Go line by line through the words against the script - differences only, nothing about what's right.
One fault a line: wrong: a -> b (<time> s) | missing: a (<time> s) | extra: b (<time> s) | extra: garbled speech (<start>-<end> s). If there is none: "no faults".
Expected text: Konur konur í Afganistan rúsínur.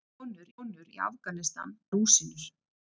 no faults